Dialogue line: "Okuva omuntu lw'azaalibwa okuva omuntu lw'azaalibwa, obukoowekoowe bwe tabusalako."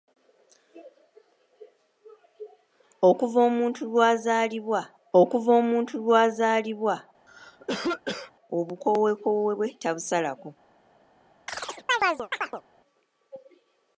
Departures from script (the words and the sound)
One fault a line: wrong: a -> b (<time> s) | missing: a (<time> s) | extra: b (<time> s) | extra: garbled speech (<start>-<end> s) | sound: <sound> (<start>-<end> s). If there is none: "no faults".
sound: cough (7.3-8.3 s)
sound: chirp (11.5-12.6 s)